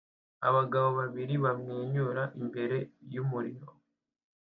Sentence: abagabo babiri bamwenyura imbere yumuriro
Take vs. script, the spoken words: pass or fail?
pass